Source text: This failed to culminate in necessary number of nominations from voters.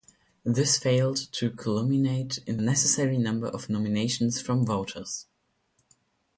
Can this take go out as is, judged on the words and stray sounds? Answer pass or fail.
pass